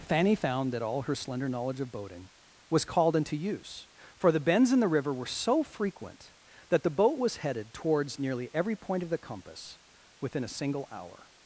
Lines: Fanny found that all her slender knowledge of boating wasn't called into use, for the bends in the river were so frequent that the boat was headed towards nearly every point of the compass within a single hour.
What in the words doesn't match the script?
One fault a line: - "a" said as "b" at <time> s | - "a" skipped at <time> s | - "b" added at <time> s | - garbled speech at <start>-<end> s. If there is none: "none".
- "wasn't" said as "was" at 2.7 s